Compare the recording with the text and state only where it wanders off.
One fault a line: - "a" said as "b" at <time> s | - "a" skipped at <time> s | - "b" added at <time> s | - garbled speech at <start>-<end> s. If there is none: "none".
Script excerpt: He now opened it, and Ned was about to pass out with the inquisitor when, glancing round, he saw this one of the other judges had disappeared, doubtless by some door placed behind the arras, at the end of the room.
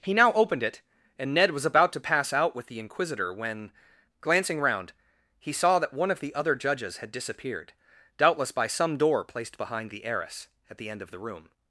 - "this" said as "that" at 5.8 s